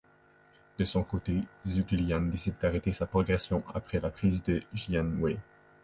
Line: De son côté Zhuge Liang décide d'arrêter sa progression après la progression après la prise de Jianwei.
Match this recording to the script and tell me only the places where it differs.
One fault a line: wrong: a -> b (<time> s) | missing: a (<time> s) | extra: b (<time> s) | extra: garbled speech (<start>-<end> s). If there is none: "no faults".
missing: progression après la (4.1 s)